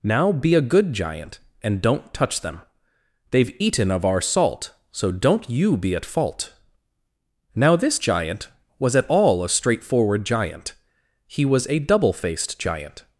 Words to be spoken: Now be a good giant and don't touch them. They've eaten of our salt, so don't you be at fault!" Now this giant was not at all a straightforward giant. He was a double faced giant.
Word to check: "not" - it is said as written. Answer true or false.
false